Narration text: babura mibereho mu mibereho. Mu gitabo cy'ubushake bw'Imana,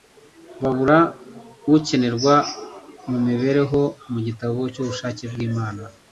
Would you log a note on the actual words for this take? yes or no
yes